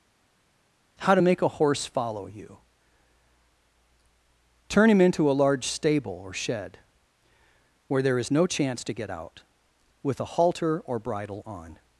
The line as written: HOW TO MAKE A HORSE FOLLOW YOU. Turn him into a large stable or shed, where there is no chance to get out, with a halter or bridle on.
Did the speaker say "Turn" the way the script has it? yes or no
yes